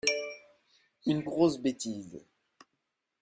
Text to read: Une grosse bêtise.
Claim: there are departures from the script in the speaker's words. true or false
false